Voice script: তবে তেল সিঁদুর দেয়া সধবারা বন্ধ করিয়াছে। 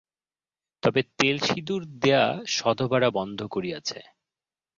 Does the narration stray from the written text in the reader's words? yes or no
no